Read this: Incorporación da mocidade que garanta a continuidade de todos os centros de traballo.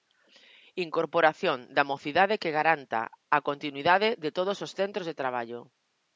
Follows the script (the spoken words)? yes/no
yes